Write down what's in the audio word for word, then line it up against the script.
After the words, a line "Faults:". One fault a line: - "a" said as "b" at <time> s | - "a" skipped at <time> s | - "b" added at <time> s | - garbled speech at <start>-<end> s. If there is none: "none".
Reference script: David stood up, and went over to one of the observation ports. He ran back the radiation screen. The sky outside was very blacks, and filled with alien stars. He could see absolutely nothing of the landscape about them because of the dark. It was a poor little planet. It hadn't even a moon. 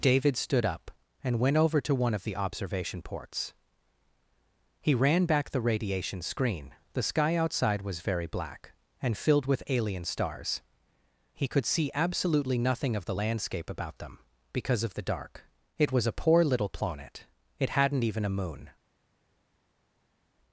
David stood up, and went over to one of the observation ports. He ran back the radiation screen. The sky outside was very black, and filled with alien stars. He could see absolutely nothing of the landscape about them because of the dark. It was a poor little planet. It hadn't even a moon.
Faults:
- "blacks" said as "black" at 8.2 s